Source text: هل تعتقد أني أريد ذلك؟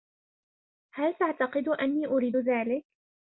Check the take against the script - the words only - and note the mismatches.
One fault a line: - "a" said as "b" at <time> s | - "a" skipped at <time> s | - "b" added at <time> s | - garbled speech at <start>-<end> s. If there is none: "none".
none